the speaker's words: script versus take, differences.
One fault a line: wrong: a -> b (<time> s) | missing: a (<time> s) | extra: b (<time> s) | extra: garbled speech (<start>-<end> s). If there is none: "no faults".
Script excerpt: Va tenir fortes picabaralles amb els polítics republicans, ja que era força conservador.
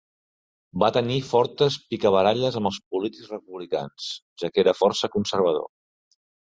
no faults